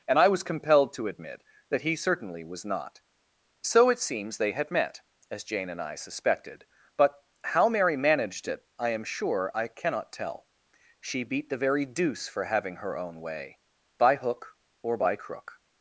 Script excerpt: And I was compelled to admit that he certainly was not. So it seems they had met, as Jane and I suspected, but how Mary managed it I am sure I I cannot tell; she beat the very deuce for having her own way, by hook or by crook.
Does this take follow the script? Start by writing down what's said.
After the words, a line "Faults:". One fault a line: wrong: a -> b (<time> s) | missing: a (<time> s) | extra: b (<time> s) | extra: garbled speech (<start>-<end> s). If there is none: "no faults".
And I was compelled to admit that he certainly was not. So it seems they had met, as Jane and I suspected, but how Mary managed it I am sure I cannot tell; she beat the very deuce for having her own way, by hook or by crook.
Faults:
missing: I (9.7 s)